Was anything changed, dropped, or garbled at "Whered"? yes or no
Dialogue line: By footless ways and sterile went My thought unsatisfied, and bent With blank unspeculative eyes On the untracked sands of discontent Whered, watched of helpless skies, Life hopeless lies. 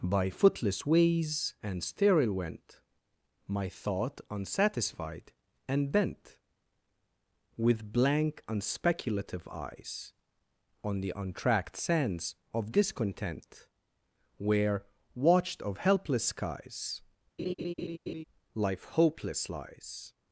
yes